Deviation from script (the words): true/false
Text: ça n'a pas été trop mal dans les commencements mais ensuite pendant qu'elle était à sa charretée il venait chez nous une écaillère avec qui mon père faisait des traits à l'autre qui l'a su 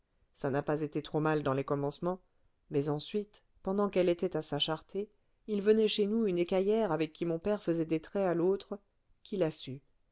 false